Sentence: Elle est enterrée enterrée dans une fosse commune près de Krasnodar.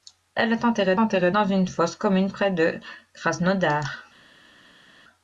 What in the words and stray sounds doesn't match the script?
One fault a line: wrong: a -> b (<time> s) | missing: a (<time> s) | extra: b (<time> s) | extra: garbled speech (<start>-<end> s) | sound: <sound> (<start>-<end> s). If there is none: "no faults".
no faults